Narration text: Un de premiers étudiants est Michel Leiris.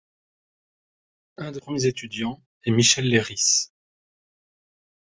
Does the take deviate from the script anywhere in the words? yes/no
no